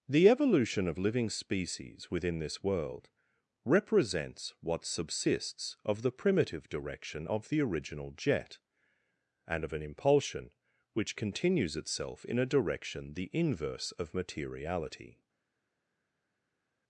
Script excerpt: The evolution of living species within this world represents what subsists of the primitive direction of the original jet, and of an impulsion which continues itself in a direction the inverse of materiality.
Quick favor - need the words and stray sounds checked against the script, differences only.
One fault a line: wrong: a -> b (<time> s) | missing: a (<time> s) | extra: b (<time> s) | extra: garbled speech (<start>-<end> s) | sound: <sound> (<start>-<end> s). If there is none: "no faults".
no faults